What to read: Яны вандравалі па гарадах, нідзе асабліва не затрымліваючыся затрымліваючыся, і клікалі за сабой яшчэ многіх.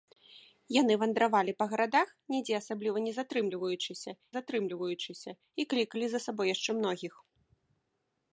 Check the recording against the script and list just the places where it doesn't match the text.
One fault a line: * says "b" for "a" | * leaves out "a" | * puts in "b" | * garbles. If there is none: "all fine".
all fine